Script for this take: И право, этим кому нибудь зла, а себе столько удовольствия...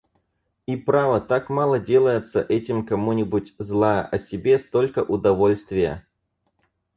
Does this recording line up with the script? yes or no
no